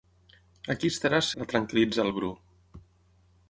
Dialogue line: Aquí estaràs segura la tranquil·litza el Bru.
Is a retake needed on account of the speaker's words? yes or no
yes